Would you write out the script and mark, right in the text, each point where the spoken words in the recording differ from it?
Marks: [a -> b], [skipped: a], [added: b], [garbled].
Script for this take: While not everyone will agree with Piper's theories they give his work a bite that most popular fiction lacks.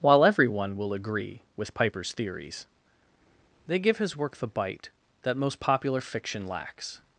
While [skipped: not] everyone will agree with Piper's theories they give his work [a -> the] bite that most popular fiction lacks.